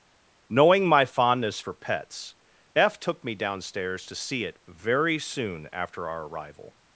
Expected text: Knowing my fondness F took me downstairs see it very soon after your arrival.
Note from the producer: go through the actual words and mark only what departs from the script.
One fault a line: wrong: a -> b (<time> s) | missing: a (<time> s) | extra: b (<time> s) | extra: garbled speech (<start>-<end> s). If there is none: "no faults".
extra: for pets (1.6 s)
extra: to (4.1 s)
wrong: your -> our (6.1 s)